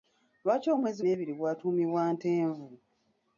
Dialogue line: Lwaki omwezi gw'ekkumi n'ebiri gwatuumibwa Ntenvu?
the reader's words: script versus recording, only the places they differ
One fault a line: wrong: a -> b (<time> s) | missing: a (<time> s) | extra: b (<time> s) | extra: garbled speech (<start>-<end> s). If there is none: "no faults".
missing: gw'ekkumi (1.0 s)